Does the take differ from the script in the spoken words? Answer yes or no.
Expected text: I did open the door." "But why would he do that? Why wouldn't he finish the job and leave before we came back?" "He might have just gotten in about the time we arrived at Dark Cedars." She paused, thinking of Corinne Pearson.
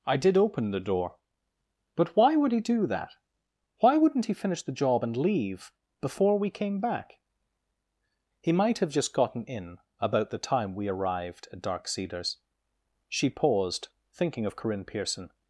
no